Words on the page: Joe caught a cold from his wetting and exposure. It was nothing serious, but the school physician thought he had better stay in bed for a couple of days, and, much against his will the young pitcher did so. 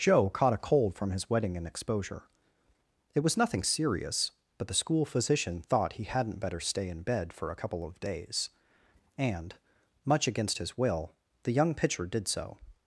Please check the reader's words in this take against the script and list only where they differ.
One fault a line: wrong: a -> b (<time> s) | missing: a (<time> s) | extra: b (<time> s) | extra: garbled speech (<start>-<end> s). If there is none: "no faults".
wrong: had -> hadn't (6.0 s)